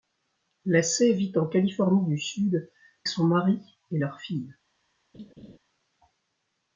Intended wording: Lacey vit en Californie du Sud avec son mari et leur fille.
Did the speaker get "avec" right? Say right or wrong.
wrong